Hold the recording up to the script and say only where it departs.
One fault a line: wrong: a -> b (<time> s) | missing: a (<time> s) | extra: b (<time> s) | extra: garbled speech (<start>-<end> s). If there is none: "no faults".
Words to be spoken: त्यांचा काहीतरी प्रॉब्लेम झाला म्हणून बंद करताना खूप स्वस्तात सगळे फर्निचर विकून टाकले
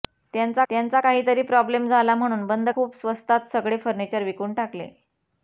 extra: त्यांचा (0.7 s)
missing: करताना (2.7 s)